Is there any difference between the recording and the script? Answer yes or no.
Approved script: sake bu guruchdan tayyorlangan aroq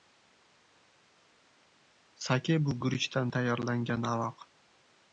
no